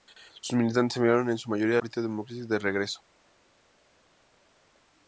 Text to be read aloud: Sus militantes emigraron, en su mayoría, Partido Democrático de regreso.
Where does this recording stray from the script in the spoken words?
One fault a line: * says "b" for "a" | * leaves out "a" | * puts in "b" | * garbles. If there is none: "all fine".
all fine